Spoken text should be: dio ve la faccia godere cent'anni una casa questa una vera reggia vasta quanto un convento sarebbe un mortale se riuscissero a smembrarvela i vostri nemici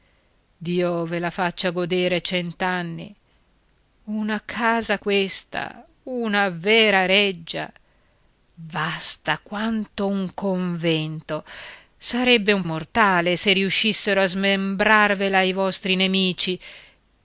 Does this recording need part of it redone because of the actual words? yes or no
no